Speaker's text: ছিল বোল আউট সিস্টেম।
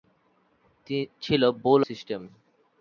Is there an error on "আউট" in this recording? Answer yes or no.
yes